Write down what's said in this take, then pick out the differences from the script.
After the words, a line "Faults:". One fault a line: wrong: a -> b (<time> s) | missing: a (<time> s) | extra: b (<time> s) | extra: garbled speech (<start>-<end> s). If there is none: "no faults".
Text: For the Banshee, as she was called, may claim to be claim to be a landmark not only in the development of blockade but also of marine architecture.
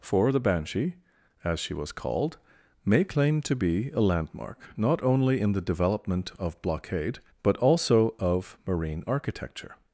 For the Banshee, as she was called, may claim to be a landmark not only in the development of blockade but also of marine architecture.
Faults:
missing: claim to be (3.9 s)